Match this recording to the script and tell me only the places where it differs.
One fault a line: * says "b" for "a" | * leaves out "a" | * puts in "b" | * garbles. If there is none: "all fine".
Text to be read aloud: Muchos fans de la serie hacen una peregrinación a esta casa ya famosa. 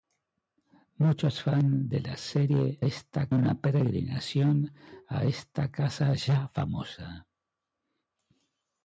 * says "esta" for "hacen"